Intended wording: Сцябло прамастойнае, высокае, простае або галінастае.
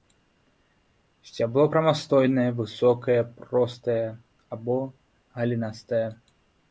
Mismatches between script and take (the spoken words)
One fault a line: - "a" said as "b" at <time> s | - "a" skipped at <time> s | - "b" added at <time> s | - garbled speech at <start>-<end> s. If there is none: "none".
none